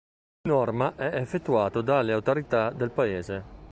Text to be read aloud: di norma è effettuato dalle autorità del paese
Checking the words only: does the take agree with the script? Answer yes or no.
yes